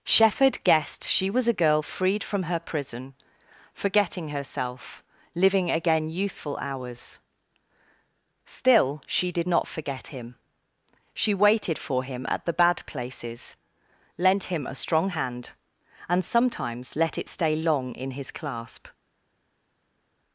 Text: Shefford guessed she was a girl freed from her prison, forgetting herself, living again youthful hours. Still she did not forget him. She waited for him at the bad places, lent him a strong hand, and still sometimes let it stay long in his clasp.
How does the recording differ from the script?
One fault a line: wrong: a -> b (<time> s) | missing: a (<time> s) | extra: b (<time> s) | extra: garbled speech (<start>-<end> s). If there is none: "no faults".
missing: still (16.2 s)